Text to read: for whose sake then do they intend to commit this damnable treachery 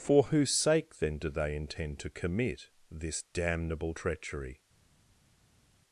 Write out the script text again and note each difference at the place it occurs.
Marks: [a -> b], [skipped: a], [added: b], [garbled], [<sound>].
for whose sake then do they intend to commit this damnable treachery